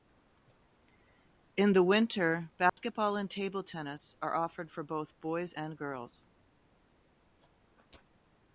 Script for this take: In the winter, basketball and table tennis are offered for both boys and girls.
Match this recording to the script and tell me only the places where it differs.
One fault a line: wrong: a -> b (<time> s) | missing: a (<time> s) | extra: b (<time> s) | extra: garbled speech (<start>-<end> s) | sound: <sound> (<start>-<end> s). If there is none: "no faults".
sound: dropout (2.7-2.8 s)